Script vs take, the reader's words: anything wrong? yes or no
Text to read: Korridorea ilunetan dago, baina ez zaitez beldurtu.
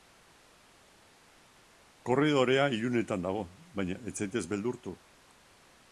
no